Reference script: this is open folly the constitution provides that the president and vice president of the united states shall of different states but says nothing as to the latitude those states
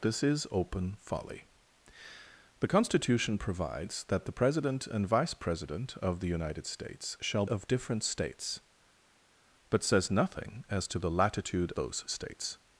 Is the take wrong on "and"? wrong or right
right